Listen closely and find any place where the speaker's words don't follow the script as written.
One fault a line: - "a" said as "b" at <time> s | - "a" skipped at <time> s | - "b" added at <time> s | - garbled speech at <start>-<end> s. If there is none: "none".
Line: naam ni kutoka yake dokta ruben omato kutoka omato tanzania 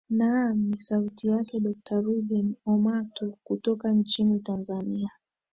- "kutoka" said as "sauti" at 0.8 s
- "omato" said as "nchini" at 3.9 s